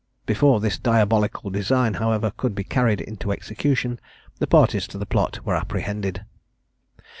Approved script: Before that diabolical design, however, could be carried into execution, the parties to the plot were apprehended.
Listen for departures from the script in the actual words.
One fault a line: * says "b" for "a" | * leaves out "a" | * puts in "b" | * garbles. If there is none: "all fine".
* says "this" for "that"